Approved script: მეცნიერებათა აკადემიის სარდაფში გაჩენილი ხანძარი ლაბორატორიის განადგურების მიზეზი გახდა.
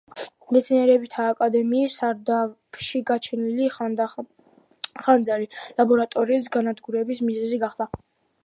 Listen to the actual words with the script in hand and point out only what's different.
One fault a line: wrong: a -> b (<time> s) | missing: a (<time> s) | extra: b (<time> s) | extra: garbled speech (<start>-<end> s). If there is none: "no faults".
no faults